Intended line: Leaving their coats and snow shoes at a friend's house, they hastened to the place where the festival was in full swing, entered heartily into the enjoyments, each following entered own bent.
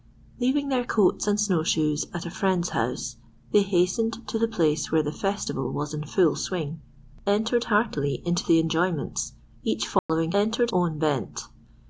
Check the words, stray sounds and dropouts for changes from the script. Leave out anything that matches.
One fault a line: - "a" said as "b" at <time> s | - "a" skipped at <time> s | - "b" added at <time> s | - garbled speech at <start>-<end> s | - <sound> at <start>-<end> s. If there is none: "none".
- dropout at 10.0-10.1 s